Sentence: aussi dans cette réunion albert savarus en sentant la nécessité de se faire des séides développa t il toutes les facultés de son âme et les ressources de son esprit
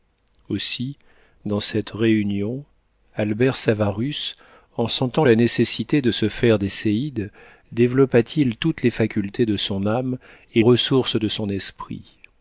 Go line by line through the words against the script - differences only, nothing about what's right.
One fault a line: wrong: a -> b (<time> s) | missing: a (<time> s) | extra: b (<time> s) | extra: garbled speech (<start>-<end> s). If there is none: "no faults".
missing: les (10.6 s)